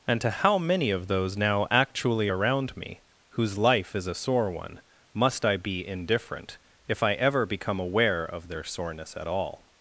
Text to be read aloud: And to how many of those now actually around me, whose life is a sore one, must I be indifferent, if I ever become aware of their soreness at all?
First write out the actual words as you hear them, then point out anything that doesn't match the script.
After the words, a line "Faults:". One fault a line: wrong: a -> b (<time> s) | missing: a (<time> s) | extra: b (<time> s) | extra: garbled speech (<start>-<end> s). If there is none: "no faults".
And to how many of those now actually around me, whose life is a sore one, must I be indifferent, if I ever become aware of their soreness at all?
Faults:
no faults